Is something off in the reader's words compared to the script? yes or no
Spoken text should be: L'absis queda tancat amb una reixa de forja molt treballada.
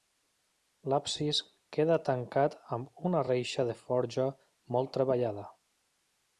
no